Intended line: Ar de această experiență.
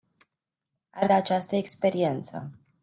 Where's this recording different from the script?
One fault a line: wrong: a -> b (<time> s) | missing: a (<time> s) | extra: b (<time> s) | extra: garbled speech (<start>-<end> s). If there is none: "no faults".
no faults